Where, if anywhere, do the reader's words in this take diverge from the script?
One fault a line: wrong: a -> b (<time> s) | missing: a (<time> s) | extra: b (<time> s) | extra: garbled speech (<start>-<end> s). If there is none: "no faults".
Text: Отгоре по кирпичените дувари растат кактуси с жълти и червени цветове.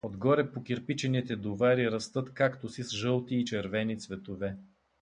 no faults